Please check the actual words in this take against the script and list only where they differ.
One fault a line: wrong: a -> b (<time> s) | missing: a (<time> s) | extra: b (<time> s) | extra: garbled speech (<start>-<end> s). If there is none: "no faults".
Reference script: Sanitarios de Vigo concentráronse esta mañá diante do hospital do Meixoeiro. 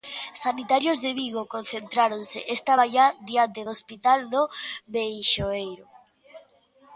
no faults